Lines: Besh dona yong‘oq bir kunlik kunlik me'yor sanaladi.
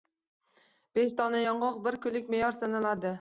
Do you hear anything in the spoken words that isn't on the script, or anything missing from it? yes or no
yes